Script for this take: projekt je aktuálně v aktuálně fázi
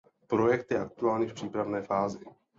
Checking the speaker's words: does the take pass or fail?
fail